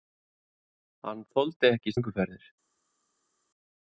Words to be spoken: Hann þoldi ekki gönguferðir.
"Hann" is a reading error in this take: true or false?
false